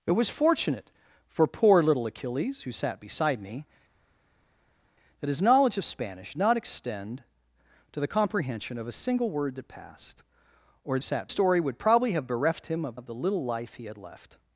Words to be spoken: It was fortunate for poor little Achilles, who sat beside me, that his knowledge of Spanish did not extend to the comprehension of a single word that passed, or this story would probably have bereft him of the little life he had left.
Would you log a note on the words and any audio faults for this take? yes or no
yes